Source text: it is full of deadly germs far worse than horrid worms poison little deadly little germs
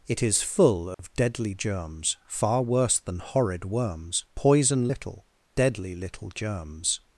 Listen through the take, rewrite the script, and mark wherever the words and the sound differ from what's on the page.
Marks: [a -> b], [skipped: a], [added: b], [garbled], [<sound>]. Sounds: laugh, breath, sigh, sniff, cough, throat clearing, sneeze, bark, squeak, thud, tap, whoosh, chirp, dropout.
it is full of [dropout] deadly germs far worse than horrid worms poison little deadly little germs